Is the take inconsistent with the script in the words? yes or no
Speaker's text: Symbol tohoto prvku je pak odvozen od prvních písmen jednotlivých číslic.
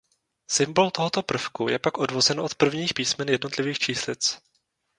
no